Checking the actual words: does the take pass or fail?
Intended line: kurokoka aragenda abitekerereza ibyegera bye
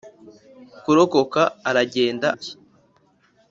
fail